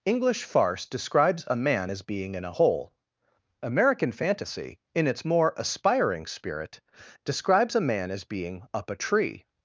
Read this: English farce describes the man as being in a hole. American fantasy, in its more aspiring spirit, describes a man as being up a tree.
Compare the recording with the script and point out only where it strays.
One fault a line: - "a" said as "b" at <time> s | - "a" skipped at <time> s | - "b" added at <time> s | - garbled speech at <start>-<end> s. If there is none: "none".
- "the" said as "a" at 1.4 s